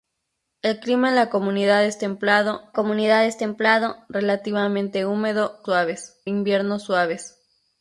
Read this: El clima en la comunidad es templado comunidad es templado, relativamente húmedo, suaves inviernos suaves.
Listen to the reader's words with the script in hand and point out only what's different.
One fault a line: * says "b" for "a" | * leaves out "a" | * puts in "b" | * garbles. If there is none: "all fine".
all fine